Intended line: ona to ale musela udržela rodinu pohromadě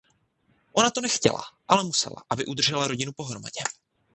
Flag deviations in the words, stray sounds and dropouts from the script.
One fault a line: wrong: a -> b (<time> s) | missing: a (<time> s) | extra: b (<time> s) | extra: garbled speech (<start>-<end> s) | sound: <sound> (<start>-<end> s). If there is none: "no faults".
extra: nechtěla (1.0 s)
extra: aby (2.3 s)